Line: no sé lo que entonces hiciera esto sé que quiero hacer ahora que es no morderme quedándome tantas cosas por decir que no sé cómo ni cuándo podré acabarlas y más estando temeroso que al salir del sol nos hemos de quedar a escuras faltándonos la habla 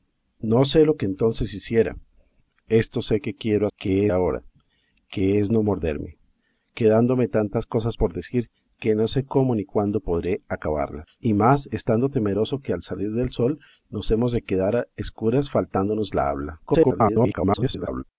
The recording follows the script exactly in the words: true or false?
false